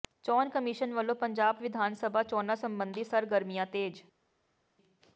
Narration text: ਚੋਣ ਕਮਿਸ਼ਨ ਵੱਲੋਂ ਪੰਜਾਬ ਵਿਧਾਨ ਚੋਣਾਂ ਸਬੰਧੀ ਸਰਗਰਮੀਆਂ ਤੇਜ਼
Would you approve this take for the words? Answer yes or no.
no